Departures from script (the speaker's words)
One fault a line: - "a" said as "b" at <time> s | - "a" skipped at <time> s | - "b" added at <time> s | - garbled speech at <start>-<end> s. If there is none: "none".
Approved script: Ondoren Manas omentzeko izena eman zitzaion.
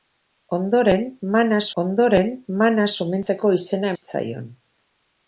- "ondoren Manas" added at 1.8 s
- "eman" skipped at 3.9 s